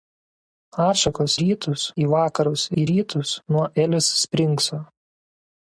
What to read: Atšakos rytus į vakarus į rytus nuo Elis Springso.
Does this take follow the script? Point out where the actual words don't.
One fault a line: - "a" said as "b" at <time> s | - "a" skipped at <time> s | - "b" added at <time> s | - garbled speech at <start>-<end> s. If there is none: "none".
none